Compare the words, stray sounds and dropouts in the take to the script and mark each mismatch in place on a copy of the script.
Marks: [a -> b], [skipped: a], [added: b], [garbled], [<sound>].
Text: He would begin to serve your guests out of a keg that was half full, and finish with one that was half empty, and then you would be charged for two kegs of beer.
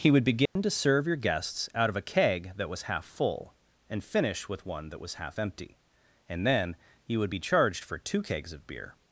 He would begin [dropout] to serve your guests out of a keg that was half full, and finish with one that was half empty, and then you would be charged for two kegs of beer.